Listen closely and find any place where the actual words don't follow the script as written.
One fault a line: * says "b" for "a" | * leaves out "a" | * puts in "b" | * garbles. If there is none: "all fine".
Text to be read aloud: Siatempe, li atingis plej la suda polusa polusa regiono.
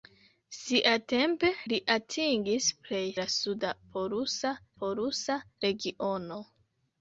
all fine